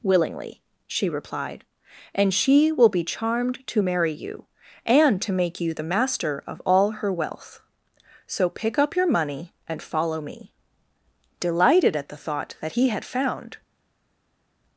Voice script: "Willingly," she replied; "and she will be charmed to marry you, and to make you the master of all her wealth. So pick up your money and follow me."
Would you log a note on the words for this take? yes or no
yes